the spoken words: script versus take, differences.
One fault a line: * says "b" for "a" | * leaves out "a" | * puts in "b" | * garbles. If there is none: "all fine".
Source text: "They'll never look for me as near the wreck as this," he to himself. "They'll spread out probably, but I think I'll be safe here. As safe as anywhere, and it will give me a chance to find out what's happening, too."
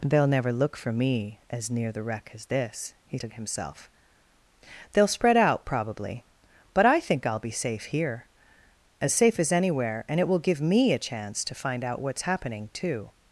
all fine